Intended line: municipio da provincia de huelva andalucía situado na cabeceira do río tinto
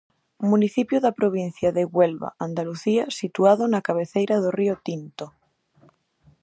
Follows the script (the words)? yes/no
yes